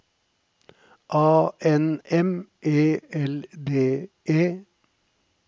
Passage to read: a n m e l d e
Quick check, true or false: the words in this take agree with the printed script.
true